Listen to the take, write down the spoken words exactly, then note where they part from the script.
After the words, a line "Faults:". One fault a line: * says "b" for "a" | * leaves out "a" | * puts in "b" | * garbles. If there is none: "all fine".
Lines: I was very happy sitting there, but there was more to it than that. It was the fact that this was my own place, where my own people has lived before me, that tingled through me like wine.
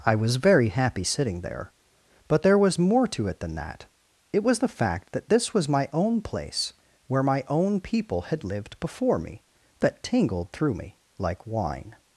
I was very happy sitting there, but there was more to it than that. It was the fact that this was my own place, where my own people had lived before me, that tingled through me like wine.
Faults:
* says "had" for "has"